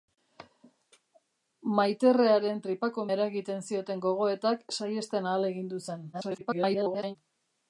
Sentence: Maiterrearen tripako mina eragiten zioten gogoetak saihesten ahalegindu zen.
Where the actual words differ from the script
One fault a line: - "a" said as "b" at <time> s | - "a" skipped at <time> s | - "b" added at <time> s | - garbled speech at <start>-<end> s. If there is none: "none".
- "mina" skipped at 3.0 s
- garbled speech at 6.1-7.2 s